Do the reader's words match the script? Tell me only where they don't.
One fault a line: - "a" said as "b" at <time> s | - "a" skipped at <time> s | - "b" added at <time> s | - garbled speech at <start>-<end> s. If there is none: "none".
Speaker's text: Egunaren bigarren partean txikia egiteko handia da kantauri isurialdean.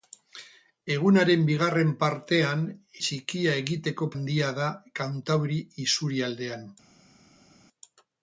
none